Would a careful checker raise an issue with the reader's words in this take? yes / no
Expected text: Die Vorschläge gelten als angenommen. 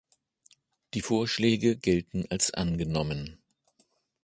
no